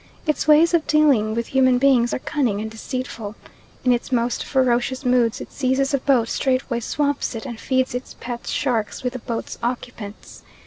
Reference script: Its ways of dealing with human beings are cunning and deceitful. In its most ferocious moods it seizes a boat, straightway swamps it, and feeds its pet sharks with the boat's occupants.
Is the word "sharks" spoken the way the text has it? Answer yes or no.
yes